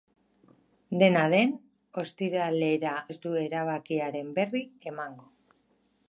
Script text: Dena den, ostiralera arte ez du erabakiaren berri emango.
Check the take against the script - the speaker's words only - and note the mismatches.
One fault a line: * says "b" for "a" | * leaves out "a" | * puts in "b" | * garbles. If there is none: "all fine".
* leaves out "arte"